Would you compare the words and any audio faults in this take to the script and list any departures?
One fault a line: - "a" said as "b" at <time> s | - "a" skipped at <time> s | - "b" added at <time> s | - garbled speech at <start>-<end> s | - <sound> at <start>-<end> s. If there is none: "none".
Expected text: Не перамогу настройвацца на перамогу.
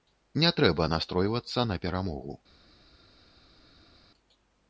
- "перамогу" said as "трэба" at 0.6 s